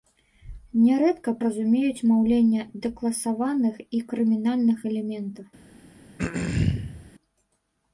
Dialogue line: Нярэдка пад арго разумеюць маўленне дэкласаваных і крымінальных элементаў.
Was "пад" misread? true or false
true